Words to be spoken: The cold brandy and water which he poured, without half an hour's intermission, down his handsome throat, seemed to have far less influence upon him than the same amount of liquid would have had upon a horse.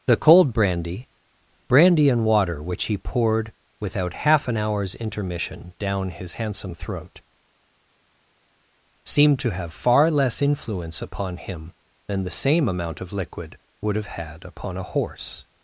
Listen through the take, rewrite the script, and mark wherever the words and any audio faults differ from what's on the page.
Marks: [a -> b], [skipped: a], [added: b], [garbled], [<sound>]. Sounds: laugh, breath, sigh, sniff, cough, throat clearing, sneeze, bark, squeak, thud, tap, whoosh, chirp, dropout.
The cold brandy [added: brandy] and water which he poured, without half an hour's intermission, down his handsome throat, seemed to have far less influence upon him than the same amount of liquid would have had upon a horse.